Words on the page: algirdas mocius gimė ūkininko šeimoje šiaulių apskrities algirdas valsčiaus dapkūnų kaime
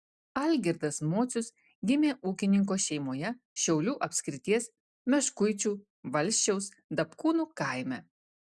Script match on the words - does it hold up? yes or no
no